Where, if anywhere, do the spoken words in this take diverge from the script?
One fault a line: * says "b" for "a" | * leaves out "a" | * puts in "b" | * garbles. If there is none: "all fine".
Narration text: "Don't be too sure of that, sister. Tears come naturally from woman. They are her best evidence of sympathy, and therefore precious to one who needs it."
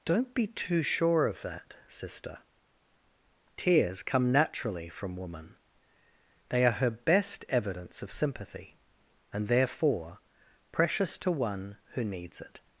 all fine